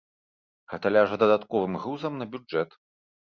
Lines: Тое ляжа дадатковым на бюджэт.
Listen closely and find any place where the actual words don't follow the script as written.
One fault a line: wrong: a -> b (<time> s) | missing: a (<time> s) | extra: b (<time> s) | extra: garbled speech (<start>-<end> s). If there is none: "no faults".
wrong: Тое -> Гэта (0.7 s)
extra: грузам (1.8 s)